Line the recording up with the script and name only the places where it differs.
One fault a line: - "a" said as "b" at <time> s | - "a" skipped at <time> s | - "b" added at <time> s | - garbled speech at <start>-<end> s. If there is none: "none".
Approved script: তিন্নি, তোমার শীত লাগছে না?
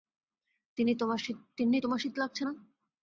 none